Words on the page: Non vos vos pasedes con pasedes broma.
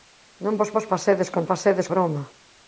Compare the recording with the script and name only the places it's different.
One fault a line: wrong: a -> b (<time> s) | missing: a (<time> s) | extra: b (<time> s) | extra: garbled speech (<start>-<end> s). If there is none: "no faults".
no faults